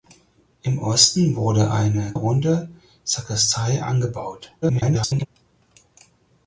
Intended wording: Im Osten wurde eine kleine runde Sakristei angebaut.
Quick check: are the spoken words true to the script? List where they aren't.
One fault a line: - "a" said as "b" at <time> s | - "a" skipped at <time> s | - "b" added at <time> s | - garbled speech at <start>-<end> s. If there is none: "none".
- "kleine" skipped at 2.1 s
- garbled speech at 4.6-5.3 s